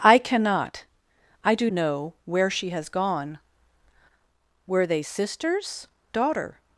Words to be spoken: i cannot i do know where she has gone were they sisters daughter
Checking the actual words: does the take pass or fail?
pass